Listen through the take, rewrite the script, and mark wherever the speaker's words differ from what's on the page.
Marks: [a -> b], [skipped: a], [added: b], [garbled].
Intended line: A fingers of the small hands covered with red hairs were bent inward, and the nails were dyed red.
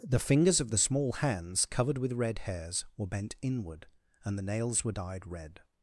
[A -> The] fingers of the small hands covered with red hairs were bent inward, and the nails were dyed red.